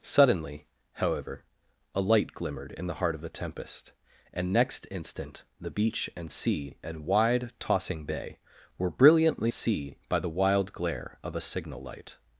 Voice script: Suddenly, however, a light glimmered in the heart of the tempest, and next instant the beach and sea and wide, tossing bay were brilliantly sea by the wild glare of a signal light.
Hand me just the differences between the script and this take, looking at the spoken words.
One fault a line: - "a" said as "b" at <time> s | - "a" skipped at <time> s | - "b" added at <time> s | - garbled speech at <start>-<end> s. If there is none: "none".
none